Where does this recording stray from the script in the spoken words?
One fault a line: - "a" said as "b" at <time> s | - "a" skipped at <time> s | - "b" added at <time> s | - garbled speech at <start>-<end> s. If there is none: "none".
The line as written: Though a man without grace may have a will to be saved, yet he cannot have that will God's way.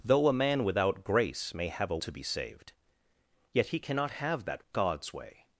- "will" skipped at 2.0 s
- "will" skipped at 4.7 s